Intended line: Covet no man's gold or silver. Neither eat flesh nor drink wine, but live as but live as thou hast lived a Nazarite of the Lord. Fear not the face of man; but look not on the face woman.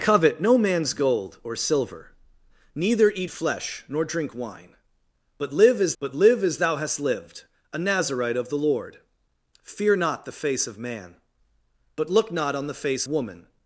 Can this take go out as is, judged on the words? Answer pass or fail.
pass